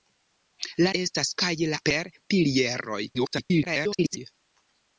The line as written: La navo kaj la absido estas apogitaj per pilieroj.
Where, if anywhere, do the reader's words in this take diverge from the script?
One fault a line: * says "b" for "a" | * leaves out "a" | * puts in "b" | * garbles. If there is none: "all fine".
* says "estas" for "navo"
* leaves out "absido estas apogitaj"
* garbles